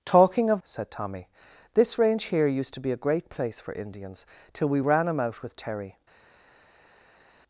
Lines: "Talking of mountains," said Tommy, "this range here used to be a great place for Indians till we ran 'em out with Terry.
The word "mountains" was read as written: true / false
false